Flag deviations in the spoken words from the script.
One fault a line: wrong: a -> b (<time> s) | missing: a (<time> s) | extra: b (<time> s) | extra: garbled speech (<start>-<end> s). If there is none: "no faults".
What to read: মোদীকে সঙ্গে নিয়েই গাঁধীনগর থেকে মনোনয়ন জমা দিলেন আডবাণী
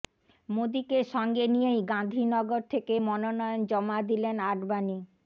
no faults